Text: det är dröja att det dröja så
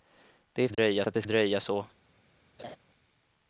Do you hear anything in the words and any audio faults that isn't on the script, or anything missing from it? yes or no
yes